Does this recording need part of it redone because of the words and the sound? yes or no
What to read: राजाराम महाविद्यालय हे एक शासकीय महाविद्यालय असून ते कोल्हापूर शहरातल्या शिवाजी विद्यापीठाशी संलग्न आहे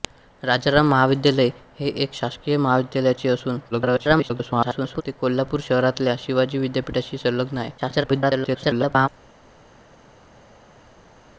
yes